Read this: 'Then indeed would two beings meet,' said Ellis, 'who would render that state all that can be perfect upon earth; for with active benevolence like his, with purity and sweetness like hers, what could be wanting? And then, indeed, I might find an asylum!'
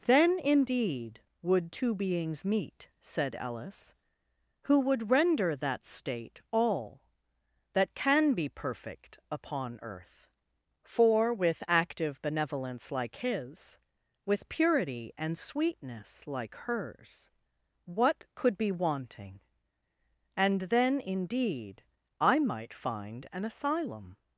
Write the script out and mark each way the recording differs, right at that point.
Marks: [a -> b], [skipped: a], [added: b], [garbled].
'Then indeed would two beings meet,' said Ellis, 'who would render that state all that can be perfect upon earth; for with active benevolence like his, with purity and sweetness like hers, what could be wanting? And then, indeed, I might find an asylum!'